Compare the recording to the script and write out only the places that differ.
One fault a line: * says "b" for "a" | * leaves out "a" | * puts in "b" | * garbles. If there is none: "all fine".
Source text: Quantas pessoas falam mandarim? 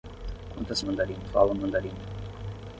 * says "mandarim" for "pessoas"